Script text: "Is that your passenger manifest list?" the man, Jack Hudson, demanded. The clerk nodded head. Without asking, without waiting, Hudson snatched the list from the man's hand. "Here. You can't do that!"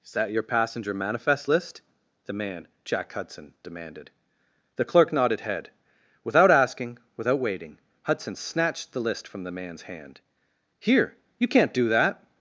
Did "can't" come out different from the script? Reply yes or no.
no